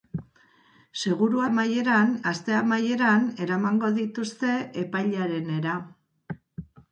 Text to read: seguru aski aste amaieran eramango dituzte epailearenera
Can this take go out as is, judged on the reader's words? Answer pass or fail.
fail